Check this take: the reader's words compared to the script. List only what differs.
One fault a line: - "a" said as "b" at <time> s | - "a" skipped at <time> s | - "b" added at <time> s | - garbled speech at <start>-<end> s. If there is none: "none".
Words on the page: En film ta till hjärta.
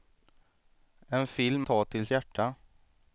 none